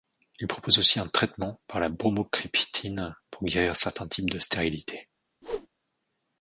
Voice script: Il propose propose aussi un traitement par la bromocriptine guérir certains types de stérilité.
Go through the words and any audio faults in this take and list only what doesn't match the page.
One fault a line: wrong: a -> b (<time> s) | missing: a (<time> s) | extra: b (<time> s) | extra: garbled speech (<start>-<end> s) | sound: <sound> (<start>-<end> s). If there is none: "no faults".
missing: propose (0.8 s)
extra: pour (3.3 s)
sound: whoosh (5.4-5.7 s)